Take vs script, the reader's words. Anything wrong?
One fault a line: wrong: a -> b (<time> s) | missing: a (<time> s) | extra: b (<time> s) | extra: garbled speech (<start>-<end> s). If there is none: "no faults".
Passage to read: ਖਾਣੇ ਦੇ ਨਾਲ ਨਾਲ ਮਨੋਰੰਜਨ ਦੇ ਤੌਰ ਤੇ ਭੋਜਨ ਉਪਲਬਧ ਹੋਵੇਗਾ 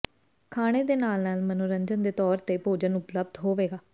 no faults